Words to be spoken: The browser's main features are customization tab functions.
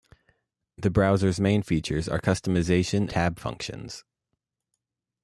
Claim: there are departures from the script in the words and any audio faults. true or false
false